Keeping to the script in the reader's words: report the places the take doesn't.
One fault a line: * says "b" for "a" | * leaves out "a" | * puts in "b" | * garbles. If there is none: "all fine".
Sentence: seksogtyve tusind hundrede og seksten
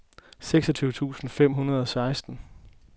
* puts in "fem"